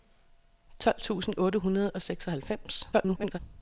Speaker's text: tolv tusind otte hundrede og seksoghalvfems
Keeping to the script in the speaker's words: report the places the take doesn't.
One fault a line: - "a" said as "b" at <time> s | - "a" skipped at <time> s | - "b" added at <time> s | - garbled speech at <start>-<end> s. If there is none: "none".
- garbled speech at 2.9-3.4 s